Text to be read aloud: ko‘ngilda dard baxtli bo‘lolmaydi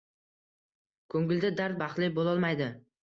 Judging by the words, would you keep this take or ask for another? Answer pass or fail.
pass